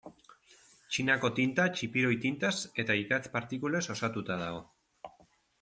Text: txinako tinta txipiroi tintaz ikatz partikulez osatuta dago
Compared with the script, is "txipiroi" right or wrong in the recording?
right